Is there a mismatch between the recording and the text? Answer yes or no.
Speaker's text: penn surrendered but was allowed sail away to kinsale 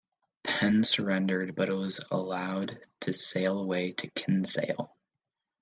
yes